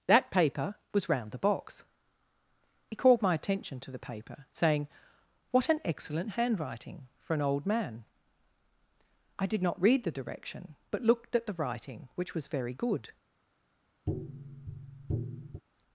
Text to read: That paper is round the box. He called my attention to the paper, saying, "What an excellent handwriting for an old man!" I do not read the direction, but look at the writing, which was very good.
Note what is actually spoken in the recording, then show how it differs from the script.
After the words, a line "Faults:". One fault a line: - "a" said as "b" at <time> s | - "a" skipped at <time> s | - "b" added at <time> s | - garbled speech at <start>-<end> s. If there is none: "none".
That paper was round the box. He called my attention to the paper, saying, "What an excellent handwriting for an old man!" I did not read the direction, but looked at the writing, which was very good.
Faults:
- "is" said as "was" at 0.9 s
- "do" said as "did" at 9.4 s
- "look" said as "looked" at 11.0 s